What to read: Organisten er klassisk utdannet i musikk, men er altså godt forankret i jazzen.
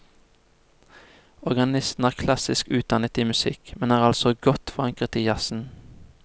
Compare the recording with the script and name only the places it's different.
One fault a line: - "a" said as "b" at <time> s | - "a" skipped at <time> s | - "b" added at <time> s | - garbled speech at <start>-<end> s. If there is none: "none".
none